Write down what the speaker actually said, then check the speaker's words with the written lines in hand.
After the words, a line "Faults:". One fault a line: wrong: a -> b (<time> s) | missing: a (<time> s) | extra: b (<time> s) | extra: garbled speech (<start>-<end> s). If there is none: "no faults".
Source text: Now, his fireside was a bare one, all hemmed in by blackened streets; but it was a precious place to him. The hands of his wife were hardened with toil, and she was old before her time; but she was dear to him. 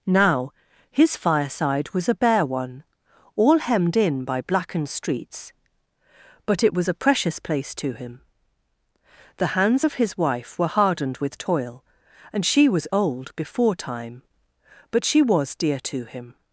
Now, his fireside was a bare one, all hemmed in by blackened streets; but it was a precious place to him. The hands of his wife were hardened with toil, and she was old before time; but she was dear to him.
Faults:
missing: her (13.8 s)